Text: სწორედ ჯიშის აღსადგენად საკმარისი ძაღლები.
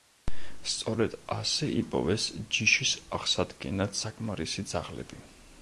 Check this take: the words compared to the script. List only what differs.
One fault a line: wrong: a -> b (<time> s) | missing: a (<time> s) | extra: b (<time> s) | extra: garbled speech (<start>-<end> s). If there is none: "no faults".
extra: ასე იპოვეს (1.4 s)